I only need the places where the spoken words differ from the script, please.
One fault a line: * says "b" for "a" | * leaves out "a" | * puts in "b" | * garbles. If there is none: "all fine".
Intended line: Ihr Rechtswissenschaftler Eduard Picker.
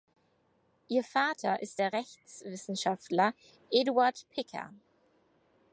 * puts in "Vater ist der"